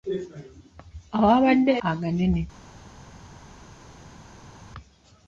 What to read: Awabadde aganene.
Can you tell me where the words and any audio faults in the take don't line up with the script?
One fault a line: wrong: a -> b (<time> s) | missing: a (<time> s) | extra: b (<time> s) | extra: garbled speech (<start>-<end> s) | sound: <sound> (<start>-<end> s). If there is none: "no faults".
no faults